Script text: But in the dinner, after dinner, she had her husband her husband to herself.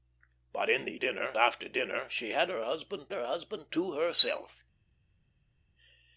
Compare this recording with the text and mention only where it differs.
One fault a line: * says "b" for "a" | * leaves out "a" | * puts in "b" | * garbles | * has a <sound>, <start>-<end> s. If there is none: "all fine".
all fine